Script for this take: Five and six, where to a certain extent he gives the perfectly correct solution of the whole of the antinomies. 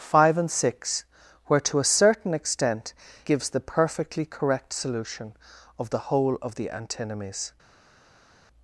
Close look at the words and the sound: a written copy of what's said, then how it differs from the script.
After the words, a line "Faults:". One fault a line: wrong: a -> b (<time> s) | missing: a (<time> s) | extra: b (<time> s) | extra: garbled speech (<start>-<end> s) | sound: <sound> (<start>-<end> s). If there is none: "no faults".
Five and six, where to a certain extent gives the perfectly correct solution of the whole of the antinomies.
Faults:
missing: he (3.0 s)